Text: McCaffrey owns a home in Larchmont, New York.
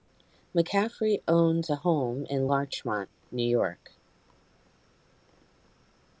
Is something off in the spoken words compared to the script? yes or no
no